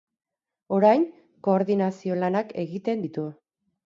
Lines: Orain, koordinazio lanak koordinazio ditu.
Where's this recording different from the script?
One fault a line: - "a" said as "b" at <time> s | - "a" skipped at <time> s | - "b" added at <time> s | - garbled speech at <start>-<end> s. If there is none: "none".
- "koordinazio" said as "egiten" at 2.6 s